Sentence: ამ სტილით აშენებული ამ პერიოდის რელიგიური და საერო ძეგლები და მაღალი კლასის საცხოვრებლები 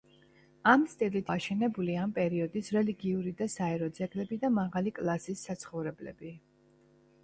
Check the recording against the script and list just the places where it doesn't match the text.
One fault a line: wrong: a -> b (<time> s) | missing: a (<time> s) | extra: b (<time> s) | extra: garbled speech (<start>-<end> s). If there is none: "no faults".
no faults